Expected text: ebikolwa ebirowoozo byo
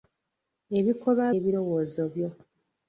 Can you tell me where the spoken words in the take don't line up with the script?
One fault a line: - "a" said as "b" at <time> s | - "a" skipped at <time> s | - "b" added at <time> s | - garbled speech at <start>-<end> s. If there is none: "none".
none